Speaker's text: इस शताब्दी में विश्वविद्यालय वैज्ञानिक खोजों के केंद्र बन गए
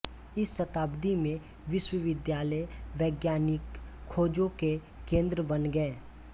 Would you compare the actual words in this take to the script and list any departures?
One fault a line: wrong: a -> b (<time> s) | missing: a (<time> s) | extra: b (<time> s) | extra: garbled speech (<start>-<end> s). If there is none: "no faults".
no faults